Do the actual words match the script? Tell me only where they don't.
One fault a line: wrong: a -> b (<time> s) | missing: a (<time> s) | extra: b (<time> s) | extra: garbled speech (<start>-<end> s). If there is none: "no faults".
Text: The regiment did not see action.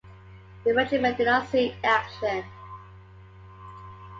no faults